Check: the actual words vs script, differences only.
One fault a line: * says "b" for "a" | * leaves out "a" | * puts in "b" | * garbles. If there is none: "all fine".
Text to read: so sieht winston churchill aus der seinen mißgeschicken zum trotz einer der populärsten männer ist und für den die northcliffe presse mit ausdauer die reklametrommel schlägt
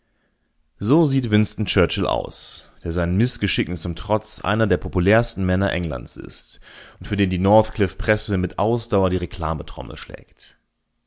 * puts in "englands"